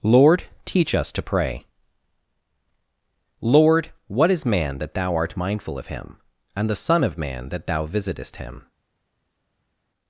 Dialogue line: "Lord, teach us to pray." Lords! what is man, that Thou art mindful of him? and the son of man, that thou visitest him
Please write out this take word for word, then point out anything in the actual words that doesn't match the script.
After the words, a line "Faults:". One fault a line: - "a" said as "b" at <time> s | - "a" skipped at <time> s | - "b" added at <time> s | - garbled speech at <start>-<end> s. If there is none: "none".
"Lord, teach us to pray." Lord! what is man, that Thou art mindful of him? and the son of man, that thou visitest him
Faults:
- "Lords" said as "Lord" at 3.4 s